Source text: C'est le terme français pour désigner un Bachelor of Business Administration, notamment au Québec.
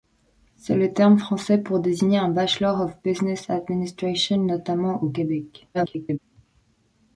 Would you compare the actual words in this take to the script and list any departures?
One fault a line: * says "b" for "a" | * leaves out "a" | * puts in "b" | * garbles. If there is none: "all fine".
* garbles